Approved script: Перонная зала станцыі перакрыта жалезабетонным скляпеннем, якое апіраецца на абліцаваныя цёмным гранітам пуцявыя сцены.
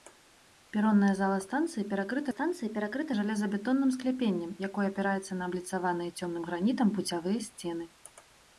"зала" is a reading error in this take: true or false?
false